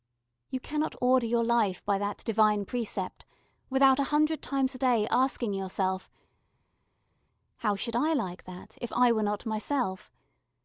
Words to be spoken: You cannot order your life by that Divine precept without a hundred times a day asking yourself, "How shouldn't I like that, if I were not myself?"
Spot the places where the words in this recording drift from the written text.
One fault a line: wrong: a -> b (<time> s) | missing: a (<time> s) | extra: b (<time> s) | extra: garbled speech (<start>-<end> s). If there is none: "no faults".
wrong: shouldn't -> should (7.7 s)